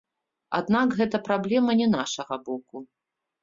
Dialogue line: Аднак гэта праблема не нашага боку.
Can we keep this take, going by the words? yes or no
yes